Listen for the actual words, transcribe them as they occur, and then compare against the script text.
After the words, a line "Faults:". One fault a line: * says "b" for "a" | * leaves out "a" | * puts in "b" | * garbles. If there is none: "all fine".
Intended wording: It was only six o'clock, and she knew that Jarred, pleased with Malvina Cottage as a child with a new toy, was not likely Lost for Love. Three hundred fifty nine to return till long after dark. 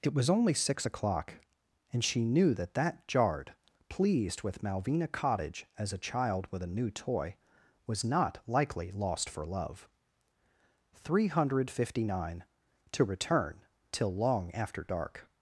It was only six o'clock, and she knew that that Jarred, pleased with Malvina Cottage as a child with a new toy, was not likely Lost for Love. Three hundred fifty nine to return till long after dark.
Faults:
* puts in "that"